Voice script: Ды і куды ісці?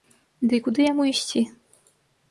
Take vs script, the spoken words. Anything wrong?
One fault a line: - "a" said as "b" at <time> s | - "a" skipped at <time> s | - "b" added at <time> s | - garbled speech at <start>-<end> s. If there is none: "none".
- "яму" added at 0.9 s